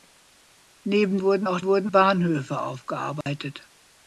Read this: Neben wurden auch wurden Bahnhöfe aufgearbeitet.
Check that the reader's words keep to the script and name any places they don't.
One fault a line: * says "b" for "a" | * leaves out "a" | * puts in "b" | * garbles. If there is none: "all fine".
all fine